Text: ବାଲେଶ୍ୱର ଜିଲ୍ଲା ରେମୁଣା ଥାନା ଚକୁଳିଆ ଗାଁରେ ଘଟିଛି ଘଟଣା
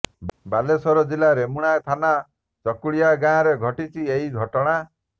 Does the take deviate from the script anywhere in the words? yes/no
yes